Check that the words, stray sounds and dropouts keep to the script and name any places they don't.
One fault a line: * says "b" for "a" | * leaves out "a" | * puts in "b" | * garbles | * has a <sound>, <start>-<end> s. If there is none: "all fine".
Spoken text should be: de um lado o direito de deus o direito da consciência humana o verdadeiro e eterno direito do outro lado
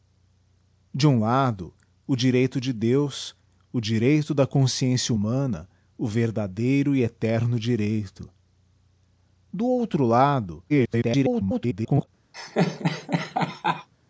* garbles
* has a laugh, 12.3-13.9 s